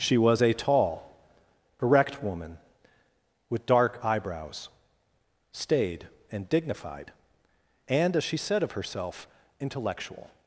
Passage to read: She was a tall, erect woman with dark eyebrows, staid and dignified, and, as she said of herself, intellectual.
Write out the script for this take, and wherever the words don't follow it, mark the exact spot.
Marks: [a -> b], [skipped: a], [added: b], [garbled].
She was a tall, erect woman with dark eyebrows, staid and dignified, and, as she said of herself, intellectual.